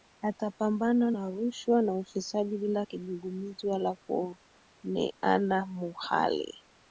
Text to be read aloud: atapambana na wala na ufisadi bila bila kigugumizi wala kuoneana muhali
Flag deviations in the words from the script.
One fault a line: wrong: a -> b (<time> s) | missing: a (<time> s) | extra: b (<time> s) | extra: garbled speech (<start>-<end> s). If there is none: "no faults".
wrong: wala -> rushwa (1.3 s)
missing: bila (2.9 s)